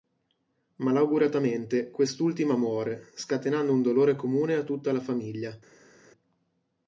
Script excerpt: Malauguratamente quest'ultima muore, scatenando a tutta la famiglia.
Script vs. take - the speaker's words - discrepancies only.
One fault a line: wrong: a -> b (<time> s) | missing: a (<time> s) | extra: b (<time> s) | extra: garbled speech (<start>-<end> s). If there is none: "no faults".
extra: un dolore comune (3.7 s)